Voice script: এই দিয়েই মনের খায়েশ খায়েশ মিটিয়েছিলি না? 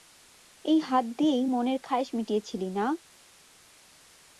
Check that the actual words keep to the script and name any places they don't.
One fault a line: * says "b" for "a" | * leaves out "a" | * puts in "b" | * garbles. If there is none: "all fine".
* puts in "হাত"
* leaves out "খায়েশ"